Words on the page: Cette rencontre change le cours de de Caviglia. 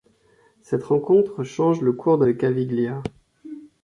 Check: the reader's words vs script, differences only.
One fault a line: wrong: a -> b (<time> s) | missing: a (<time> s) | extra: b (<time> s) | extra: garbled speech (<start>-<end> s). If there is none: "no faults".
no faults